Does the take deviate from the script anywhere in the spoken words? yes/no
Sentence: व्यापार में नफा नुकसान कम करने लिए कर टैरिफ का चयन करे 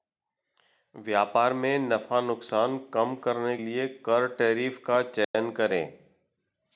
no